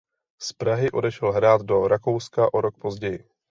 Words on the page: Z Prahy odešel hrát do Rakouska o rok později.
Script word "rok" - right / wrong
right